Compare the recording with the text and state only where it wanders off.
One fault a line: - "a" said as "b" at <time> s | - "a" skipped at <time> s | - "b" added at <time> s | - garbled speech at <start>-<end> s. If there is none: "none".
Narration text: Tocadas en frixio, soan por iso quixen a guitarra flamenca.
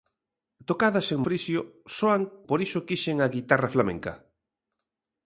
none